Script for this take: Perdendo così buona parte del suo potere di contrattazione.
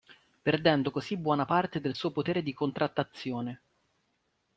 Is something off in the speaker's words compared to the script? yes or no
no